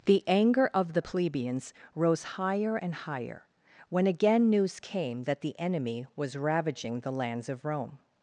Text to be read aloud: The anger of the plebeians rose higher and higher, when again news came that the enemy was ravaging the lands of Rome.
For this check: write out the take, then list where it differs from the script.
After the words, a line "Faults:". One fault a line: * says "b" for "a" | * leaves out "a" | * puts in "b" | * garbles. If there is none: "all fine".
The anger of the plebeians rose higher and higher, when again news came that the enemy was ravaging the lands of Rome.
Faults:
all fine